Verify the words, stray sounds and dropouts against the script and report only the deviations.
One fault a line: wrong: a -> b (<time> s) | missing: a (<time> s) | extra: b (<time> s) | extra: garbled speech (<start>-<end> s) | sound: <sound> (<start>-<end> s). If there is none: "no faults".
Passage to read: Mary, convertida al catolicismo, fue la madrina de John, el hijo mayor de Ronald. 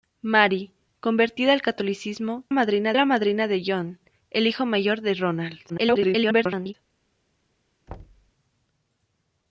wrong: fue -> madrina (2.5 s)
extra: garbled speech (5.7-6.7 s)
sound: thud (7.9-8.3 s)